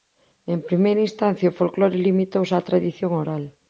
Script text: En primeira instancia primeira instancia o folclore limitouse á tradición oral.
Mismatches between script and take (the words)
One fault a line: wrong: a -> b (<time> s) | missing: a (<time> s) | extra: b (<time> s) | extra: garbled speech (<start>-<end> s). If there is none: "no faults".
missing: primeira instancia (1.5 s)